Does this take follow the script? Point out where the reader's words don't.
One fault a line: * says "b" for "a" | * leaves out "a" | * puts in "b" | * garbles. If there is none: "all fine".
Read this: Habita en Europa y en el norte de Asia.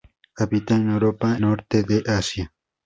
* leaves out "y en el"